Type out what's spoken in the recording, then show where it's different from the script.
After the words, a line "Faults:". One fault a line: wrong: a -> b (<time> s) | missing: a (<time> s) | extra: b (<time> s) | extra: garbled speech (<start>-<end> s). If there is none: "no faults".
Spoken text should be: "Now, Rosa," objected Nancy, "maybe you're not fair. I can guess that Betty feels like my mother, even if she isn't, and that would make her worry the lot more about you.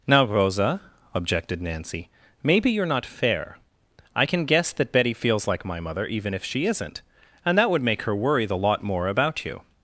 "Now, Rosa," objected Nancy, "maybe you're not fair. I can guess that Betty feels like my mother, even if she isn't, and that would make her worry the lot more about you.
Faults:
no faults